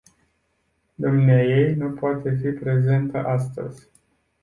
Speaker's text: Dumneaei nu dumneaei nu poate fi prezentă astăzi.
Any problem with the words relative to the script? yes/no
yes